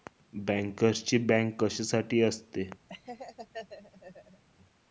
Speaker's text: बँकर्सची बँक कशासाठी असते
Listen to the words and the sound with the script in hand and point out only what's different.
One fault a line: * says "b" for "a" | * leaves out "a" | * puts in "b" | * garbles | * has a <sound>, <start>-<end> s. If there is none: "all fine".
* has a laugh, 2.9-4.4 s